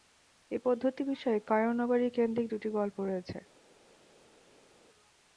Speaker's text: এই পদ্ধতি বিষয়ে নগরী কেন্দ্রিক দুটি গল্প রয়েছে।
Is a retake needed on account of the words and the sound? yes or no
yes